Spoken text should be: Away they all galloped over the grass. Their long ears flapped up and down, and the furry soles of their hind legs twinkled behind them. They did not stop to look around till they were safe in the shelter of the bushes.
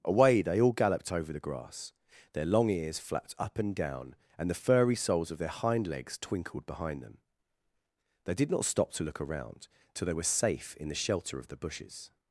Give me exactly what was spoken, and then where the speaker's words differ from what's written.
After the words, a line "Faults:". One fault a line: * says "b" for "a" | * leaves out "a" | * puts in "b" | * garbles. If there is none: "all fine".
Away they all galloped over the grass. Their long ears flapped up and down, and the furry soles of their hind legs twinkled behind them. They did not stop to look around till they were safe in the shelter of the bushes.
Faults:
all fine